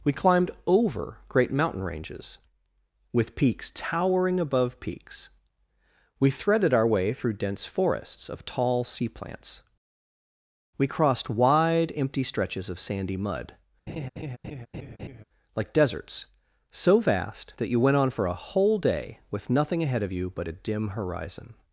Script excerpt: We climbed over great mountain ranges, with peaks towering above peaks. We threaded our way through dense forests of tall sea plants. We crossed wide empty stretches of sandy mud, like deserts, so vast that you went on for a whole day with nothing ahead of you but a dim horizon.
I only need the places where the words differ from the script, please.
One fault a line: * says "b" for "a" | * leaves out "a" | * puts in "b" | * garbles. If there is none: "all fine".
all fine